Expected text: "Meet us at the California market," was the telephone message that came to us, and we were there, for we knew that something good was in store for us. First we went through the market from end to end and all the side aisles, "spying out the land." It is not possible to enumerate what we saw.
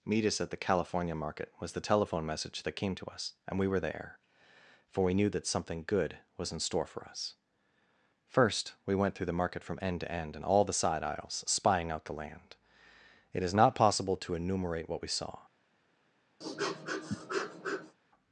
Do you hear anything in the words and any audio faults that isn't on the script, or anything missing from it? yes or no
yes